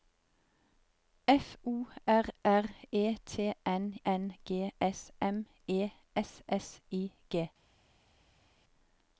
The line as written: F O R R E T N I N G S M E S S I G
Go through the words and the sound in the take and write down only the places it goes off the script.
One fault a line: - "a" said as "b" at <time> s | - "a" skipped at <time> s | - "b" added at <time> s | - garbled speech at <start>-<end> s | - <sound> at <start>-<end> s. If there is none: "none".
- "I" skipped at 4.0 s